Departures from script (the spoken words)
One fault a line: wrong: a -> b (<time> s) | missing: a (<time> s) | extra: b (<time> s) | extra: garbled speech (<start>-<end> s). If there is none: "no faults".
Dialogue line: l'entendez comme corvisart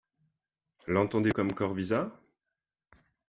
no faults